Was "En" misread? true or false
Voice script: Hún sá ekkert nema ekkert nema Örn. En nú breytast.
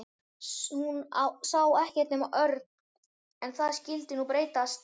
true